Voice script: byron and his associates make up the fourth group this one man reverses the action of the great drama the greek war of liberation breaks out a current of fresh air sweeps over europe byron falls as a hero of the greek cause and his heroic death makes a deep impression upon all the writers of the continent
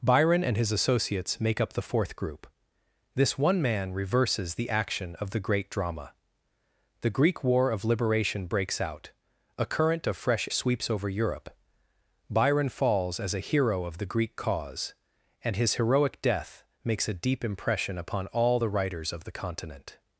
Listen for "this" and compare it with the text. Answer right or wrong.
right